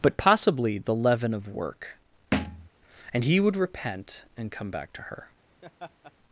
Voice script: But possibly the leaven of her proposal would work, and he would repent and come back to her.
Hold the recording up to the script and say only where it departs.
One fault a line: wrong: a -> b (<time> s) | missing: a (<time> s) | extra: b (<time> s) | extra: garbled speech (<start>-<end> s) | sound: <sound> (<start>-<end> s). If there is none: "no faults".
missing: her proposal would (1.5 s)
sound: thud (2.3-2.7 s)
sound: laugh (5.6-6.1 s)